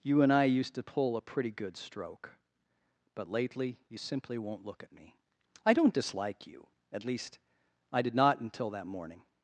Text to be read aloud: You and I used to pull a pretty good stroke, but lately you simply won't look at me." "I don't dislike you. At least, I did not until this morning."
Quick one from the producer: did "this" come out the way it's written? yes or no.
no